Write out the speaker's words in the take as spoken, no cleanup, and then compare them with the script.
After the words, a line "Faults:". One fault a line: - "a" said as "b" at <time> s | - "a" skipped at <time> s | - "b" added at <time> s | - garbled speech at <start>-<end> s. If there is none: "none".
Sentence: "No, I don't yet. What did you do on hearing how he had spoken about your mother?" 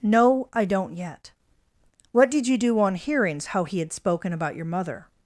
"No, I don't yet. What did you do on hearings how he had spoken about your mother?"
Faults:
- "hearing" said as "hearings" at 3.0 s